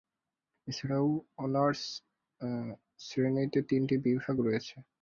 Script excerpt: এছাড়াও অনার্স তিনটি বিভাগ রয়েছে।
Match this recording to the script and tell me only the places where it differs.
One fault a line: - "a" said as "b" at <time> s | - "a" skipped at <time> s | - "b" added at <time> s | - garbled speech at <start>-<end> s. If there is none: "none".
- "শ্রেণীতে" added at 3.0 s